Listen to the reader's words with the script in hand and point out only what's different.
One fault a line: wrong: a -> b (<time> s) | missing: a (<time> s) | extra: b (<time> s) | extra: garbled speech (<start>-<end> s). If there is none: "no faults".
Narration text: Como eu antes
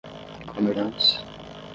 no faults